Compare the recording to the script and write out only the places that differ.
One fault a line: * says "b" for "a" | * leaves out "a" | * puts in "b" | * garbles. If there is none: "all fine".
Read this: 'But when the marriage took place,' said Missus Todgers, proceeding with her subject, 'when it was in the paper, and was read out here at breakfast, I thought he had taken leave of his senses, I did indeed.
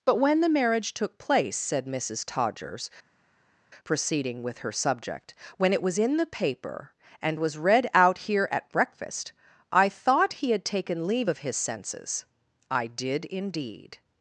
all fine